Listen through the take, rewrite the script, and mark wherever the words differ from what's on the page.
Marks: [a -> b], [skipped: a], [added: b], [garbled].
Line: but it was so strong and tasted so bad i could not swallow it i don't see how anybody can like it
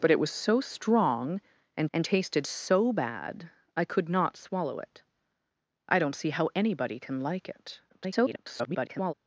but it was so strong and [added: and] tasted so bad i could not swallow it i don't see how anybody can like it [garbled]